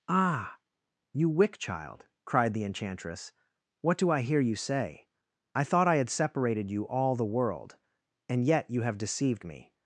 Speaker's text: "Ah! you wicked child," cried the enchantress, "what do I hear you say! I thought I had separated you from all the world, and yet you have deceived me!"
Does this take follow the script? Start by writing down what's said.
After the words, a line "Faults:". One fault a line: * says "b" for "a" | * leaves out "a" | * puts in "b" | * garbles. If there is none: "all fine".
"Ah! you wick child," cried the enchantress, "what do I hear you say! I thought I had separated you all the world, and yet you have deceived me!"
Faults:
* says "wick" for "wicked"
* leaves out "from"